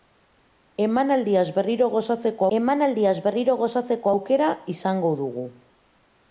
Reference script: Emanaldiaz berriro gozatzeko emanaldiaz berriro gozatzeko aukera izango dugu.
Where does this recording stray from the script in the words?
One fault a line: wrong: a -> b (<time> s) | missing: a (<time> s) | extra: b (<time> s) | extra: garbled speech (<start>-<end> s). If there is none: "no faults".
no faults